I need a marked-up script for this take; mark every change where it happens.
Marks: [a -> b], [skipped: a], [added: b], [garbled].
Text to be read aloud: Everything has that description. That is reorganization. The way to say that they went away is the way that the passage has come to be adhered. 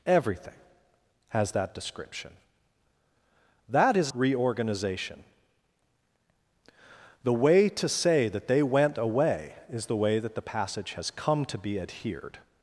Everything has that description. That is reorganization. The way to say that they went away is the way that the passage has come to be adhered.